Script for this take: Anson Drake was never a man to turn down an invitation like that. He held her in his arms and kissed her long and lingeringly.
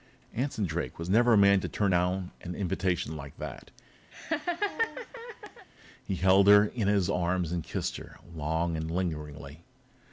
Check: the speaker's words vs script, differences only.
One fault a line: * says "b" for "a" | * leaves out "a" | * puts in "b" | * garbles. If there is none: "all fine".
all fine